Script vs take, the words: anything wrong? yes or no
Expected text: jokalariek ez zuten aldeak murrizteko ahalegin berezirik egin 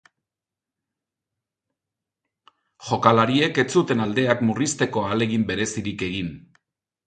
no